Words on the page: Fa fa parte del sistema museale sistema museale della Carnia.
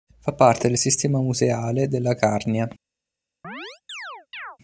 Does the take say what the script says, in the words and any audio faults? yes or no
no